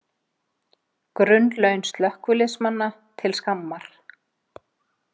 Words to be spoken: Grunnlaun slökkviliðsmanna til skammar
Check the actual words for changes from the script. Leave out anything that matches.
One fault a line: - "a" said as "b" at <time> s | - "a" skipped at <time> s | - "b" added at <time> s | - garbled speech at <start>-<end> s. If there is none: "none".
none